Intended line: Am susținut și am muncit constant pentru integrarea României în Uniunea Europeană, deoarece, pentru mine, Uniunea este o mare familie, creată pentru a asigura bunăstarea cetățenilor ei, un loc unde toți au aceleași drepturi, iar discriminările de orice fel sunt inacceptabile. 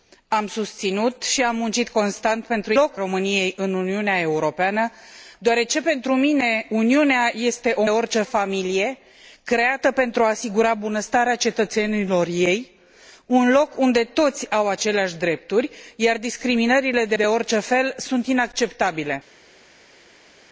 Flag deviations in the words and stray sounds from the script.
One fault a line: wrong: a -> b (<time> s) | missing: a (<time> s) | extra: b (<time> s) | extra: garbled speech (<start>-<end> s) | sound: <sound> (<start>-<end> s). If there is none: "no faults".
wrong: integrarea -> loc (2.7 s)
wrong: mare -> orice (7.9 s)
extra: de (17.1 s)